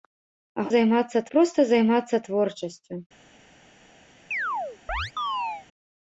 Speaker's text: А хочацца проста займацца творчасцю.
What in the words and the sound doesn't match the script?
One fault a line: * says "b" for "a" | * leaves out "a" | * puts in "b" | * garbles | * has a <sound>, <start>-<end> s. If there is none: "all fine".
* says "займацца" for "хочацца"
* has a chirp, 4.3-5.7 s